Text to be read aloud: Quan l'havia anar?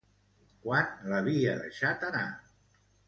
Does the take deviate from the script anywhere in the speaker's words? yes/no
yes